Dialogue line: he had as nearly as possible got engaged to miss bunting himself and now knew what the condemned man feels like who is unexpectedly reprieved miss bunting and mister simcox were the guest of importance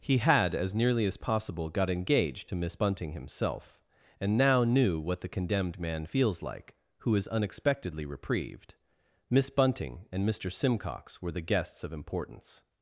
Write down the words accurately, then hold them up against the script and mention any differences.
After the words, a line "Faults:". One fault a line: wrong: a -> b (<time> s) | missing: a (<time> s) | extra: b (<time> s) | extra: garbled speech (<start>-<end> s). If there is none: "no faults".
he had as nearly as possible got engaged to miss bunting himself and now knew what the condemned man feels like who is unexpectedly reprieved miss bunting and mister simcox were the guests of importance
Faults:
wrong: guest -> guests (11.4 s)